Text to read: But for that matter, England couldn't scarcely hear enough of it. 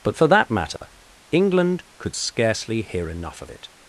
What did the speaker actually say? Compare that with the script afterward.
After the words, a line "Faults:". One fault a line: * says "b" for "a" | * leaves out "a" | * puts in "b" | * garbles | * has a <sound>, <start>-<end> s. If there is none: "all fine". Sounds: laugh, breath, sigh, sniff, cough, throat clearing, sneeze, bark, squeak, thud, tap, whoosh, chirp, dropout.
But for that matter, England could scarcely hear enough of it.
Faults:
* has a dropout, 0.8-0.8 s
* says "could" for "couldn't"